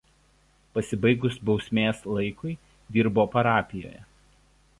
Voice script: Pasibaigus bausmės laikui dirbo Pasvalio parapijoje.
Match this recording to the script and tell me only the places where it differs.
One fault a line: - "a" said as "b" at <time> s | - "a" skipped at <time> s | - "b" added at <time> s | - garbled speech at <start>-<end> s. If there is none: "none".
- "Pasvalio" skipped at 3.3 s